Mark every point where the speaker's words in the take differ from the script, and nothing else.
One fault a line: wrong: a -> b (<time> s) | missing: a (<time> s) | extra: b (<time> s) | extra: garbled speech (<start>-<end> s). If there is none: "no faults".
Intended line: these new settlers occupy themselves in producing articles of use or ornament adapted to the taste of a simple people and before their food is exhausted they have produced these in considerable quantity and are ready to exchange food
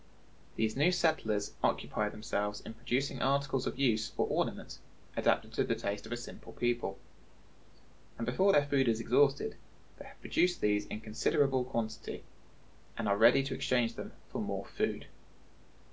extra: them for more (13.9 s)